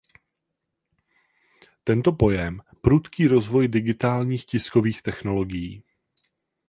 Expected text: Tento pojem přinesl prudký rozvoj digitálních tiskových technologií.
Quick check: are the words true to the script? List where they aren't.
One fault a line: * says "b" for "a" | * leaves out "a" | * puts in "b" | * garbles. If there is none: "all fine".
* leaves out "přinesl"